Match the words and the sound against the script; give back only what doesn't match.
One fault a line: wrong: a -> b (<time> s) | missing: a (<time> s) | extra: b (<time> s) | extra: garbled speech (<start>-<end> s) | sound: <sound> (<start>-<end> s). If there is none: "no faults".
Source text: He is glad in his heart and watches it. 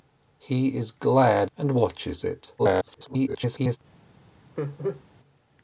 missing: in his heart (1.5 s)
extra: garbled speech (2.6-3.8 s)
sound: laugh (4.6-5.0 s)